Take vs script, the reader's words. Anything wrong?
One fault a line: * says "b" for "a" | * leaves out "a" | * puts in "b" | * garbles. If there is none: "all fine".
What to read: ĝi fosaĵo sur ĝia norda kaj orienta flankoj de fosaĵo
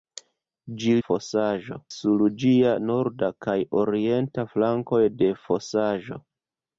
all fine